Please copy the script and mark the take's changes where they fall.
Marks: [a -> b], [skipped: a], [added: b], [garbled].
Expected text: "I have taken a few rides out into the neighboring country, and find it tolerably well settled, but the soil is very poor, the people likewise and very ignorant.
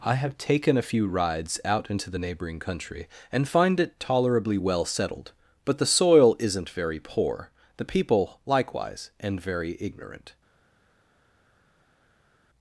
"I have taken a few rides out into the neighboring country, and find it tolerably well settled, but the soil [is -> isn't] very poor, the people likewise and very ignorant.